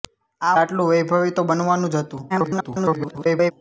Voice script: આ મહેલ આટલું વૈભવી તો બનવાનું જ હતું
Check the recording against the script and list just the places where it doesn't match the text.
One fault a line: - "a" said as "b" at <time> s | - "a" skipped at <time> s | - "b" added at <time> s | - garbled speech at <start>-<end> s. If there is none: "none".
- "મહેલ" skipped at 0.6 s
- garbled speech at 2.3-3.5 s